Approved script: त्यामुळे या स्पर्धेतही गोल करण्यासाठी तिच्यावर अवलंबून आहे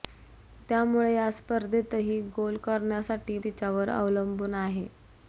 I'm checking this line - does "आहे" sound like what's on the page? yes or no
yes